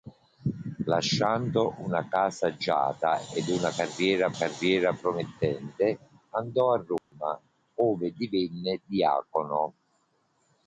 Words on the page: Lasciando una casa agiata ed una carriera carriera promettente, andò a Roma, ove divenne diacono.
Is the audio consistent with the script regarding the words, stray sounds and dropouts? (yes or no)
no